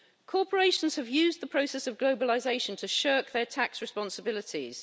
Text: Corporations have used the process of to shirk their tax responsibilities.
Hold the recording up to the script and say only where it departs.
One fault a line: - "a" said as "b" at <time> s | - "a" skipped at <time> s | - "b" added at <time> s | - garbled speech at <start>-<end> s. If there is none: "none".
- "globalisation" added at 2.0 s